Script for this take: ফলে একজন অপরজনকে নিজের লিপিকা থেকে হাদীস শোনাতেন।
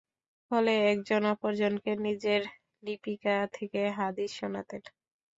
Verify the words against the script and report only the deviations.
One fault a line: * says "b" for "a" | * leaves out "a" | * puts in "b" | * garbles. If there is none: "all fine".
all fine